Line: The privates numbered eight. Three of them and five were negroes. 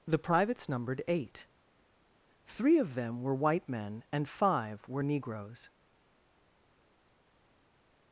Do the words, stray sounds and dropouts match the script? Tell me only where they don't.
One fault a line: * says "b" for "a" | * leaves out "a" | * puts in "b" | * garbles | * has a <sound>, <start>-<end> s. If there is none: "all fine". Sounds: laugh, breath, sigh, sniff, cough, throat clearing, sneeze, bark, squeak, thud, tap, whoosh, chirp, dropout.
* puts in "were white men"